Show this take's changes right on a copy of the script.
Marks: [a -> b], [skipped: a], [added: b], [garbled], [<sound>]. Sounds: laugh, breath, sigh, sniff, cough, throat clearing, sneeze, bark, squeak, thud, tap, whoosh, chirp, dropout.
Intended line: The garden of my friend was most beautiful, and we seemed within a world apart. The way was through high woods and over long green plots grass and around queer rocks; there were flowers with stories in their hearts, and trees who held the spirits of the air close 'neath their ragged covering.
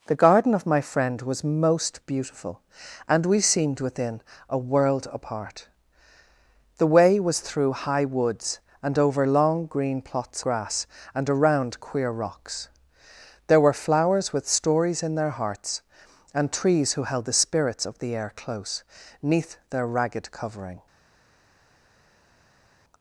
The garden of my friend was most beautiful, and we seemed within a world apart. The way was through high woods and over long green plots grass and around queer rocks; there were flowers with stories in their hearts, and trees who held the spirits of the air close 'neath their ragged covering.